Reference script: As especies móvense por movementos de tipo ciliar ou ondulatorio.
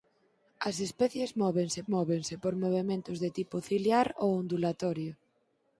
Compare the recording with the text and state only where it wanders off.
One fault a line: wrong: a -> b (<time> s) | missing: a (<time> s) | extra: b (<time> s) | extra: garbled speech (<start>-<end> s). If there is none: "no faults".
extra: móvense (1.9 s)